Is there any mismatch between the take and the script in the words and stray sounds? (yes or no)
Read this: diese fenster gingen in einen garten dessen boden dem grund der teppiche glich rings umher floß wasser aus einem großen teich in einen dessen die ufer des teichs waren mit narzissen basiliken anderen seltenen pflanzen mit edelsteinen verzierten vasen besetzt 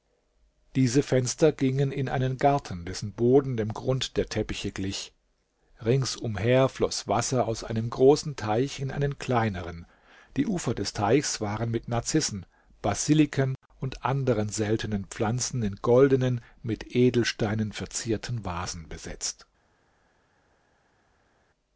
yes